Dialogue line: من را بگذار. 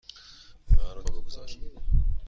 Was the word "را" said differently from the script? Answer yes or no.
no